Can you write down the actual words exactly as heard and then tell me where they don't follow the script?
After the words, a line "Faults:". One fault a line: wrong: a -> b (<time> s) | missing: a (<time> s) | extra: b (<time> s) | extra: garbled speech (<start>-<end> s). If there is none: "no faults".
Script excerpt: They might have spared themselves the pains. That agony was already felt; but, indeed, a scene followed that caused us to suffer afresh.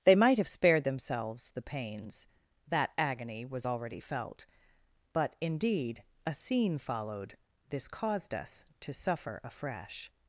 They might have spared themselves the pains. That agony was already felt; but, indeed, a scene followed this caused us to suffer afresh.
Faults:
wrong: that -> this (7.7 s)